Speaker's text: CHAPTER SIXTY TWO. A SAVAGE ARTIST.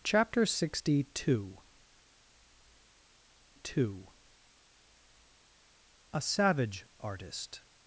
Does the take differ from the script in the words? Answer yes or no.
yes